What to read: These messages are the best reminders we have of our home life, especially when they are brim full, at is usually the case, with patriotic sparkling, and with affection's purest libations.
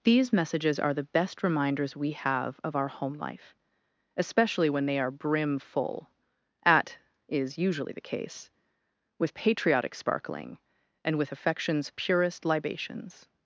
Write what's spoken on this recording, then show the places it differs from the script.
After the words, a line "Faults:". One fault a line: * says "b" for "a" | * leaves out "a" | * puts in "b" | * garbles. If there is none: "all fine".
These messages are the best reminders we have of our home life, especially when they are brim full, at is usually the case, with patriotic sparkling, and with affection's purest libations.
Faults:
all fine